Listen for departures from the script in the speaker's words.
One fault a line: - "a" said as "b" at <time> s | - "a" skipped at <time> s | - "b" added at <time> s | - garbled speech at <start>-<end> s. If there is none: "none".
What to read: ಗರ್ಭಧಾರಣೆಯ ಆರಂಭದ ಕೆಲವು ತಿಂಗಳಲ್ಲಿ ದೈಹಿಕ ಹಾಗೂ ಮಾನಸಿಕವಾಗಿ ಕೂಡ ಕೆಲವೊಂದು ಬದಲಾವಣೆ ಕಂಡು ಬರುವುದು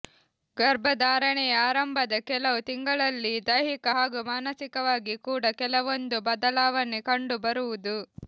none